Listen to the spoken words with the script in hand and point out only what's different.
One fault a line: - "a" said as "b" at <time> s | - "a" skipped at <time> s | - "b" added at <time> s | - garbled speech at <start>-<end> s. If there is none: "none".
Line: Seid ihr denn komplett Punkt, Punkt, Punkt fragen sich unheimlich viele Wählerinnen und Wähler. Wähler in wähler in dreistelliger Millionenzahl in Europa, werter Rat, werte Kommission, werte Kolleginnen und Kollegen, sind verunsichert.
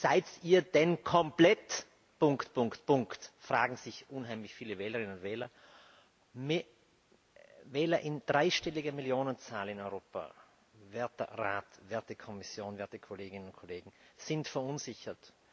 - "wähler in" skipped at 8.2 s